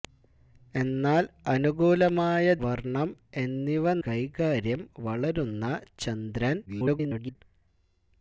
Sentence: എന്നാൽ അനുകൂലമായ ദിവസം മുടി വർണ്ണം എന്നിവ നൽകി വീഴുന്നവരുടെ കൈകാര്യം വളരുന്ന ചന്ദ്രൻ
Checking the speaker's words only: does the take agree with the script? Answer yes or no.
no